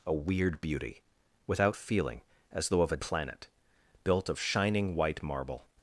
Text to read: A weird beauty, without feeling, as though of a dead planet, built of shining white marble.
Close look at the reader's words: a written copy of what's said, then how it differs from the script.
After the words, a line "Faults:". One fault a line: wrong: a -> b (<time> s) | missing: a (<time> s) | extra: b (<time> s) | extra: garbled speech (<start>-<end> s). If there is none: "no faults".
A weird beauty, without feeling, as though of a planet, built of shining white marble.
Faults:
missing: dead (3.0 s)